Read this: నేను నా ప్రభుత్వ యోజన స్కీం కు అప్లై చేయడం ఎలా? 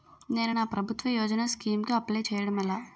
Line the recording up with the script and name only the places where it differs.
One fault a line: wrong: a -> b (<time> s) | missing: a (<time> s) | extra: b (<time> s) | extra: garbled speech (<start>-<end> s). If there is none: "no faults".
no faults